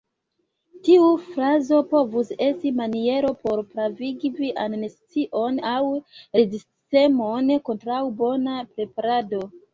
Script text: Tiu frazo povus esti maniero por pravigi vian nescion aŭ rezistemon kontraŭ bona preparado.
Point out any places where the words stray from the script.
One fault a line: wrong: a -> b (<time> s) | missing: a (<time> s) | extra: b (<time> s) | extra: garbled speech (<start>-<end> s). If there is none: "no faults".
no faults